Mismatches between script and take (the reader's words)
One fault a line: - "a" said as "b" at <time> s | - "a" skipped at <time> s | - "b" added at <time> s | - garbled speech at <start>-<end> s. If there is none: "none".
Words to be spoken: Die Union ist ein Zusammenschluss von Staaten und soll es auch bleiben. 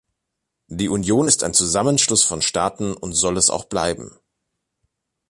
none